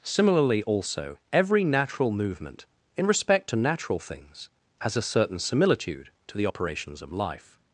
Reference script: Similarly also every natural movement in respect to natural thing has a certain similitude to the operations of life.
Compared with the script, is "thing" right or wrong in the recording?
wrong